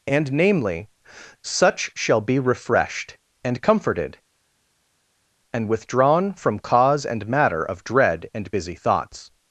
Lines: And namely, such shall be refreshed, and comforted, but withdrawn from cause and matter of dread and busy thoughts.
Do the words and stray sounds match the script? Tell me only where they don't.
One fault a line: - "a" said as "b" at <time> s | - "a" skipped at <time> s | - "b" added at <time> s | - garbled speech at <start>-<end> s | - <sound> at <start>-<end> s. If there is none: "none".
- "but" said as "and" at 5.5 s